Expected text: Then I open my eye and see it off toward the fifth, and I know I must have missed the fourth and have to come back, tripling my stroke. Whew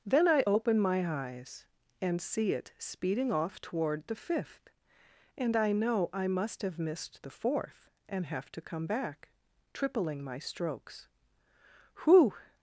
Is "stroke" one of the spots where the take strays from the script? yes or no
yes